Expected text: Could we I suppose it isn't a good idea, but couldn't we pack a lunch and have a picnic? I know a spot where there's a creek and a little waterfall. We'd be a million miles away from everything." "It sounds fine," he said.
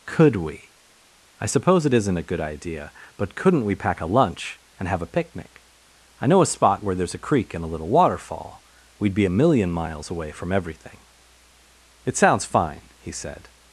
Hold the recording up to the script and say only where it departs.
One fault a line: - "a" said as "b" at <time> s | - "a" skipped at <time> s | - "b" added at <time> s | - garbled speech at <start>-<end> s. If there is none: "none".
none